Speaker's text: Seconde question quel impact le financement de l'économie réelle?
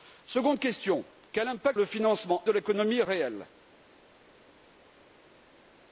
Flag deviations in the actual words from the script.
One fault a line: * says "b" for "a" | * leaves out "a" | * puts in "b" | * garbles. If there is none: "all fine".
all fine